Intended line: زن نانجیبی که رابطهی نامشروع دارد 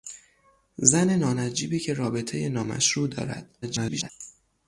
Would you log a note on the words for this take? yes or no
yes